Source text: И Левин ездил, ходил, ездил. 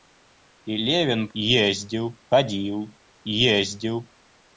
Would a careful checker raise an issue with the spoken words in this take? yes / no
no